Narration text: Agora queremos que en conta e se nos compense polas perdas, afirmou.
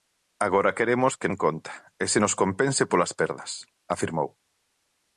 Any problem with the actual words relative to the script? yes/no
no